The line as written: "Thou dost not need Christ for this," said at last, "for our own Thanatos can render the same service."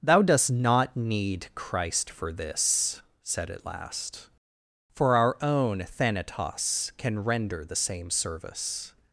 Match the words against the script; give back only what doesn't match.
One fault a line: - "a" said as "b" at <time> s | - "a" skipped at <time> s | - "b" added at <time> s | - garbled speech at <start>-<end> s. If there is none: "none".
none